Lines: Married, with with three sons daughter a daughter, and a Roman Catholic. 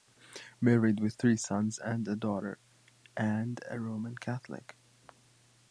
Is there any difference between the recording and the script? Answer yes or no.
yes